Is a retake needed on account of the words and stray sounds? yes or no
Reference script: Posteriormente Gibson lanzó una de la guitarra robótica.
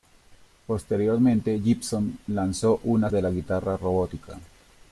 no